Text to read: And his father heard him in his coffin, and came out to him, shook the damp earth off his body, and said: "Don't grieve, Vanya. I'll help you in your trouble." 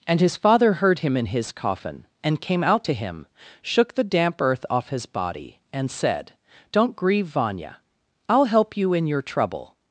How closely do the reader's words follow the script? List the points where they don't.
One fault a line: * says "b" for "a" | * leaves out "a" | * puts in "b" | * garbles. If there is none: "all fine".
all fine